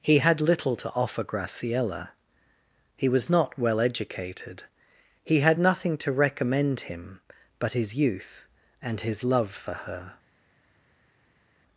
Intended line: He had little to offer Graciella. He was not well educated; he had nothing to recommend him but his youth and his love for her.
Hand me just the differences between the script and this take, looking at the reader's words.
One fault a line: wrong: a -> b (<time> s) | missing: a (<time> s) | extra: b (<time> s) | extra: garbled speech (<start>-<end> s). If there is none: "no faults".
no faults